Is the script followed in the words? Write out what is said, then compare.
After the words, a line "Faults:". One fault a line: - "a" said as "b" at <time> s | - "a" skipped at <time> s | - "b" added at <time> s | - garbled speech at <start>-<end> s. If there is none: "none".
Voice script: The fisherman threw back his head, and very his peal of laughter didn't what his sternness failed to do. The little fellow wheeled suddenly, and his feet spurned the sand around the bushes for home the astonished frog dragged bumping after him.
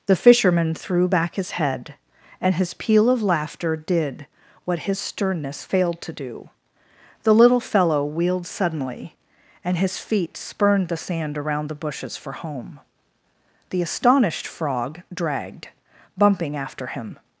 The fisherman threw back his head, and his peal of laughter did what his sternness failed to do. The little fellow wheeled suddenly, and his feet spurned the sand around the bushes for home the astonished frog dragged bumping after him.
Faults:
- "very" skipped at 2.5 s
- "didn't" said as "did" at 3.8 s